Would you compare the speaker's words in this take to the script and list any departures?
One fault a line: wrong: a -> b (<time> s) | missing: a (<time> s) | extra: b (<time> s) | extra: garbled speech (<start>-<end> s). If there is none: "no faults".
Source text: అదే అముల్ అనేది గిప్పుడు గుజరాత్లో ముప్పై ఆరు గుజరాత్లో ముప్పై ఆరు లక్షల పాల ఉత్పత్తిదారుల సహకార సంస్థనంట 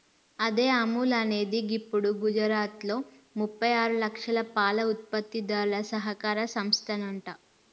missing: గుజరాత్లో ముప్పై ఆరు (4.0 s)